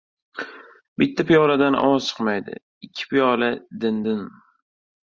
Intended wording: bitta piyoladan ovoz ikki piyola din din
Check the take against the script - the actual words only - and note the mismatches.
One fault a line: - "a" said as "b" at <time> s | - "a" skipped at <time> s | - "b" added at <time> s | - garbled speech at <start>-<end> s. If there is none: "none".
- "chiqmaydi" added at 2.1 s